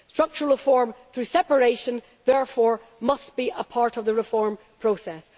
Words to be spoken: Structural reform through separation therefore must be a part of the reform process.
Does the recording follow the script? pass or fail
pass